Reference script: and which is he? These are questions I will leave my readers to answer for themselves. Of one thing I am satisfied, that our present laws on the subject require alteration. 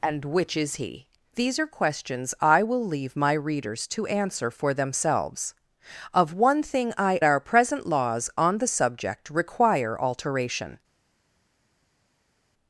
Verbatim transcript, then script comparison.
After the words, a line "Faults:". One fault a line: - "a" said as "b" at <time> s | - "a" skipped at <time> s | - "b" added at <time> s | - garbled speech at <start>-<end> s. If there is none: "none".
and which is he? These are questions I will leave my readers to answer for themselves. Of one thing I our present laws on the subject require alteration.
Faults:
- "am satisfied that" skipped at 7.2 s